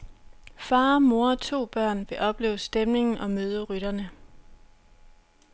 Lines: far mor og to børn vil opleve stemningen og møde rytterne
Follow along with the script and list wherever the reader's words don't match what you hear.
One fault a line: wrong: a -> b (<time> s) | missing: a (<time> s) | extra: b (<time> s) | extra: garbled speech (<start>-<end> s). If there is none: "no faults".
no faults